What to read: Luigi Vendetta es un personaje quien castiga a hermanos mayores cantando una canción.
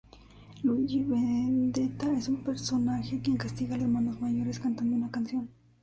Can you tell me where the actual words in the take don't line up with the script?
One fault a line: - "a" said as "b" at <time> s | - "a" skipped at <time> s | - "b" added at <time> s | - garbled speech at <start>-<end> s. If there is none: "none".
none